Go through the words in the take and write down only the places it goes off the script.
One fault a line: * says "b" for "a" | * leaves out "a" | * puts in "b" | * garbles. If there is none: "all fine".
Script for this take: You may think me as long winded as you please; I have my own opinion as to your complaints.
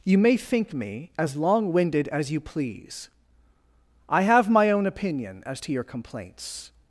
all fine